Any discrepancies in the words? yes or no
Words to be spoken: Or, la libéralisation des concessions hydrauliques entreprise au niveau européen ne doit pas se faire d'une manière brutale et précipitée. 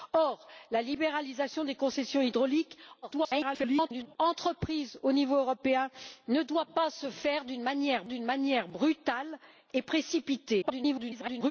yes